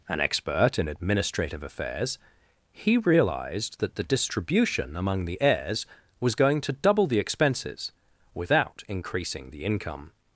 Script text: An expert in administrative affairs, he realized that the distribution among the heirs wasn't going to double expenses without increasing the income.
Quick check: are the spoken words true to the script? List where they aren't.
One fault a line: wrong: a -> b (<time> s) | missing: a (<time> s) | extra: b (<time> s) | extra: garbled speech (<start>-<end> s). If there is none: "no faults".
wrong: wasn't -> was (6.2 s)
extra: the (7.1 s)